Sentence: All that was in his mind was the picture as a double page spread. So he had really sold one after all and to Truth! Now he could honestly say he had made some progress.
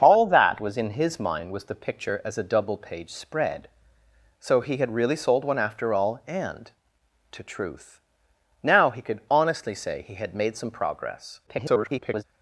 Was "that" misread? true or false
false